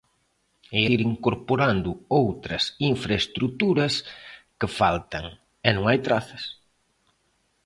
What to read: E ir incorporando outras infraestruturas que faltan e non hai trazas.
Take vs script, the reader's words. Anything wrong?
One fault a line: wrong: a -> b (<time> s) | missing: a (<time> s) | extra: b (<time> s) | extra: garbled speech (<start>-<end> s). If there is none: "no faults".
no faults